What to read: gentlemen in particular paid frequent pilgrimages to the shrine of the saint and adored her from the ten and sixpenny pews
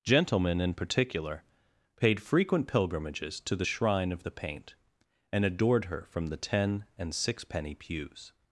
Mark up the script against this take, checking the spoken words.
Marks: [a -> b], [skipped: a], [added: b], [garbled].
gentlemen in particular paid frequent pilgrimages to the shrine of the [saint -> paint] and adored her from the ten and sixpenny pews